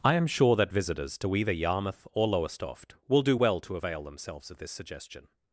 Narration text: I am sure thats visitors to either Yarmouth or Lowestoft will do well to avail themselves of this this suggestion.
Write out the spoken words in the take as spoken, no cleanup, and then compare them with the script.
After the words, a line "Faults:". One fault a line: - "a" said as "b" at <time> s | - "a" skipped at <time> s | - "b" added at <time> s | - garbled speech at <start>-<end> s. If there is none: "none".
I am sure that visitors to either Yarmouth or Lowestoft will do well to avail themselves of this suggestion.
Faults:
- "thats" said as "that" at 0.6 s
- "this" skipped at 4.7 s